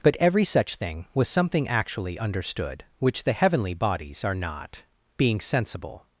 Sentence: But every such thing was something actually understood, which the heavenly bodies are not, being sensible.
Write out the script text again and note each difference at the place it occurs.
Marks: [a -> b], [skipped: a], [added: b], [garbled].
But every such thing was something actually understood, which the heavenly bodies are not, being sensible.